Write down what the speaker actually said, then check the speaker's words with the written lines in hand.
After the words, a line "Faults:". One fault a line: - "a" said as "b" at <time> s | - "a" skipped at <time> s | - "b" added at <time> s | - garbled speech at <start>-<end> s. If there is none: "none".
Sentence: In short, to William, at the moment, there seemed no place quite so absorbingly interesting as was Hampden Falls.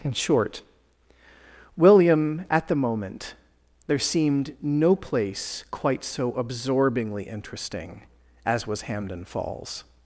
In short, William, at the moment, there seemed no place quite so absorbingly interesting as was Hampden Falls.
Faults:
- "to" skipped at 0.6 s